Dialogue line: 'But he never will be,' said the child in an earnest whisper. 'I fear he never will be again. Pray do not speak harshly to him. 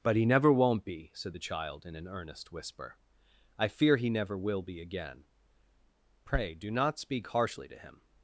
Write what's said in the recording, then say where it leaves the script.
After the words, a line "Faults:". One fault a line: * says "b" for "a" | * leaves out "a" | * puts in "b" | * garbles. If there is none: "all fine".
'But he never won't be,' said the child in an earnest whisper. 'I fear he never will be again. Pray do not speak harshly to him.
Faults:
* says "won't" for "will"